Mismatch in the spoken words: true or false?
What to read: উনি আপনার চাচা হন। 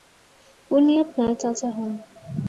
false